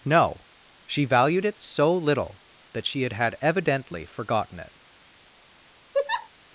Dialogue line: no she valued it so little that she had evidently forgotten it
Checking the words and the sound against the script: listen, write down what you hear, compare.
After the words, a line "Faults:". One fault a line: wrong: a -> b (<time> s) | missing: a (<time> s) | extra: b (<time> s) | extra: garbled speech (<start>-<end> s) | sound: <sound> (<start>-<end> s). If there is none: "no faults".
no she valued it so little that she had had evidently forgotten it
Faults:
extra: had (3.1 s)
sound: laugh (5.9-6.3 s)